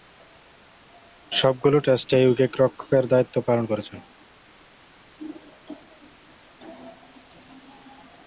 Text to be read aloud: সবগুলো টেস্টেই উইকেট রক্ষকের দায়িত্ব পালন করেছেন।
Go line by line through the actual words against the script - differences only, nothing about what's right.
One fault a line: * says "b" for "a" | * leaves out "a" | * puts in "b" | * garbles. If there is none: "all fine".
all fine